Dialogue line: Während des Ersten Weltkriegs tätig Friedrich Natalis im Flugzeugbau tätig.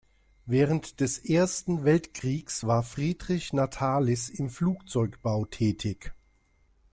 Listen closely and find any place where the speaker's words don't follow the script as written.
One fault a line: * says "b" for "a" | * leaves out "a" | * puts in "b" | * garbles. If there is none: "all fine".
* says "war" for "tätig"